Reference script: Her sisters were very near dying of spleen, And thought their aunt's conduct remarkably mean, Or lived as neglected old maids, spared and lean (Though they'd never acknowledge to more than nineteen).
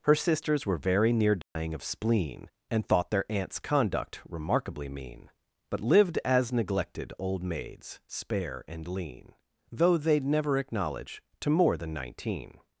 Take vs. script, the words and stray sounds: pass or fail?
fail